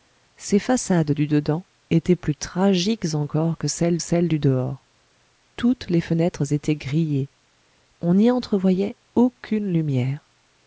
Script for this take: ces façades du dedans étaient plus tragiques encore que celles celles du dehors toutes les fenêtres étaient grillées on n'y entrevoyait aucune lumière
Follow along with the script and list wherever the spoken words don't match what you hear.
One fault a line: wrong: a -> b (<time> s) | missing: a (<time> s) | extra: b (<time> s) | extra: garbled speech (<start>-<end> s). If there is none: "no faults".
no faults